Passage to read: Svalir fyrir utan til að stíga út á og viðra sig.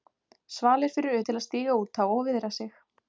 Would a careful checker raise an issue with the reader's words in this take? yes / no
yes